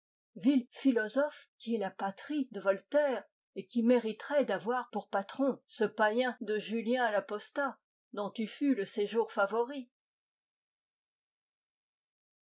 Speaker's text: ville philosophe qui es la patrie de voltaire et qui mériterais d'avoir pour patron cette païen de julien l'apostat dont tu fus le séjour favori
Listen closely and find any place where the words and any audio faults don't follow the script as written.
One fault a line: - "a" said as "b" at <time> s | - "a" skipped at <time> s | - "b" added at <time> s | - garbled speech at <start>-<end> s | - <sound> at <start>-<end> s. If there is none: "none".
- "cette" said as "ce" at 5.7 s